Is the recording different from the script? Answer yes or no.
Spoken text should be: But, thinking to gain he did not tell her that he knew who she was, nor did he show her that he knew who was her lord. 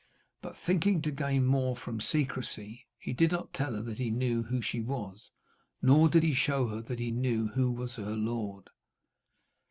yes